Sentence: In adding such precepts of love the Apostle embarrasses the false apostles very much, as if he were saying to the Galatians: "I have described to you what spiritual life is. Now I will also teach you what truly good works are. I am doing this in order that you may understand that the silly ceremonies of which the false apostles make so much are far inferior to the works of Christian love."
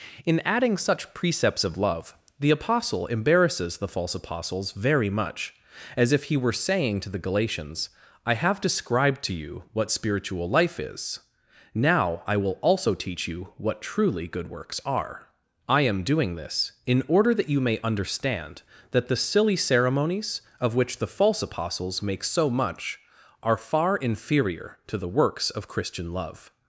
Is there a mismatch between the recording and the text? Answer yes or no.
no